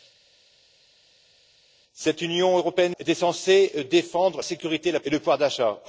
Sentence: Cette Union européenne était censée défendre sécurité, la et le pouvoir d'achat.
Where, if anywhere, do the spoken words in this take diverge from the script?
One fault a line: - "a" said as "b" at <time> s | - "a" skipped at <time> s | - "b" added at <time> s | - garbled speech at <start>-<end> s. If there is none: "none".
none